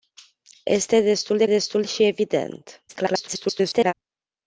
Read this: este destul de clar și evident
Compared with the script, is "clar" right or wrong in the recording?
wrong